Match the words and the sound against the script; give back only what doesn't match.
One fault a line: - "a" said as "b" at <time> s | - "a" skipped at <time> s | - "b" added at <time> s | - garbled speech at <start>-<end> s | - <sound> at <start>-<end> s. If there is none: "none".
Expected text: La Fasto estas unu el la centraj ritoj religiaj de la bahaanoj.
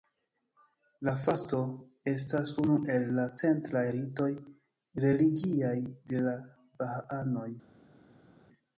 none